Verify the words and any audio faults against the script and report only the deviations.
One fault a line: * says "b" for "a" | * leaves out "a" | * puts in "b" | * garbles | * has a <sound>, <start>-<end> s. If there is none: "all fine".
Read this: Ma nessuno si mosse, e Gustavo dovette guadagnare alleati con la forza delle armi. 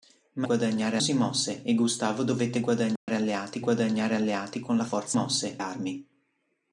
* says "guadagnare" for "nessuno"
* has a dropout, 3.0-3.1 s
* puts in "guadagnare alleati"
* says "mosse" for "delle"